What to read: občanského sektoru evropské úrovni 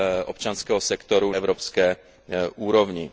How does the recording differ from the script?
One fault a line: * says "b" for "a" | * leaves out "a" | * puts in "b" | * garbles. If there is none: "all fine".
all fine